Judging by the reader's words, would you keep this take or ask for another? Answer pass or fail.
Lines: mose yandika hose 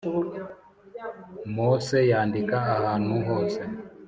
fail